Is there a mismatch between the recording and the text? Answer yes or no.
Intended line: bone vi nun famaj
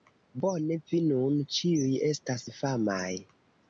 yes